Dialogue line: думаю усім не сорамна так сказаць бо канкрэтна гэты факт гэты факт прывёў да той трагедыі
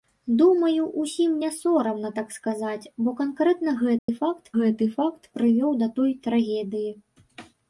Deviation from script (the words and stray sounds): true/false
true